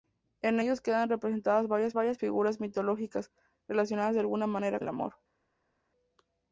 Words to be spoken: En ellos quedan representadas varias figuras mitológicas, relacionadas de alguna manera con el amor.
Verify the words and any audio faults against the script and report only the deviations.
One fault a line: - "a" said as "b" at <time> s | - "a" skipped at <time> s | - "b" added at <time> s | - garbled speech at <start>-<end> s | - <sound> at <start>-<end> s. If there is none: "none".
- "varias" added at 1.9 s
- "con" skipped at 4.8 s